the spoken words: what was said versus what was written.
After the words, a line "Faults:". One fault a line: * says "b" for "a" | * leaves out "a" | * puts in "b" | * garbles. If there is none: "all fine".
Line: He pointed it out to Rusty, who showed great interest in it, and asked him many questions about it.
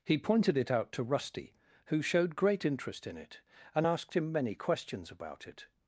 He pointed it out to Rusty, who showed great interest in it, and asked him many questions about it.
Faults:
all fine